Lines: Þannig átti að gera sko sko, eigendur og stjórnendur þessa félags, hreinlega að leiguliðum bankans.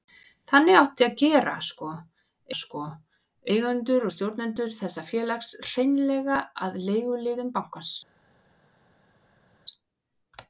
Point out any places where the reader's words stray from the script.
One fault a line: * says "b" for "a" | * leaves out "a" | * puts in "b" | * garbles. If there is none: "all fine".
all fine